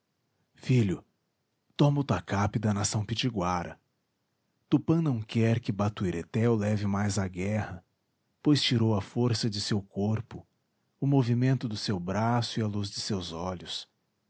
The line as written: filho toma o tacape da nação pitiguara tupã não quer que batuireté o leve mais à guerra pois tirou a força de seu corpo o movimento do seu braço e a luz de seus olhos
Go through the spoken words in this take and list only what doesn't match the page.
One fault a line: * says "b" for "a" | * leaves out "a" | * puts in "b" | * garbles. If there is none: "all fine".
all fine